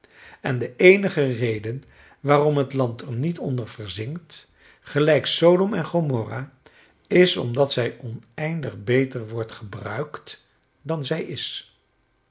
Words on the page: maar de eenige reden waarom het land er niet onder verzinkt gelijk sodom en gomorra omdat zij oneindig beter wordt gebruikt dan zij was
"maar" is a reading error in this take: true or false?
true